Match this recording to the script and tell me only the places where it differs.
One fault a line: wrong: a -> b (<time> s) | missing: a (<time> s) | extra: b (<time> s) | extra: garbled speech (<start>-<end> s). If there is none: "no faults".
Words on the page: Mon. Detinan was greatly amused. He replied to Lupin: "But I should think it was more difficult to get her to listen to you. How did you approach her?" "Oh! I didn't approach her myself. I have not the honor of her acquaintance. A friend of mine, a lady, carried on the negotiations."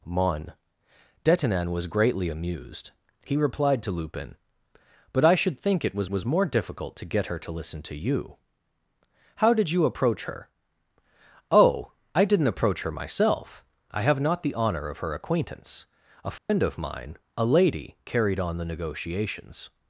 extra: was (6.1 s)